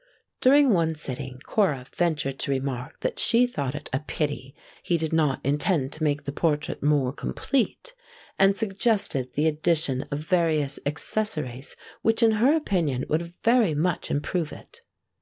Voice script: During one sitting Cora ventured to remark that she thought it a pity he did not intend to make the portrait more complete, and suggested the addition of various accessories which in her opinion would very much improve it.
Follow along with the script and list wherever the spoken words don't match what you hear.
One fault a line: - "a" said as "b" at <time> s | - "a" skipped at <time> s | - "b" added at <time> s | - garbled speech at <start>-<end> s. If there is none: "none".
none